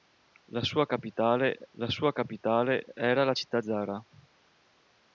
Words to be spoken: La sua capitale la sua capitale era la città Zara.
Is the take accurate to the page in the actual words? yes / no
yes